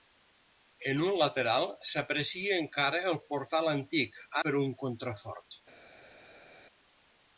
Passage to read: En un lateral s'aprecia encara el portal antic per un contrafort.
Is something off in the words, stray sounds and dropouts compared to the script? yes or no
no